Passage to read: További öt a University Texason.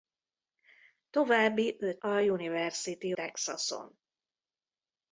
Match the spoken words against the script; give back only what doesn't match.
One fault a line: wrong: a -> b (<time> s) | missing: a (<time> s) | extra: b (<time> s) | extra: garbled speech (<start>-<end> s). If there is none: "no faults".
no faults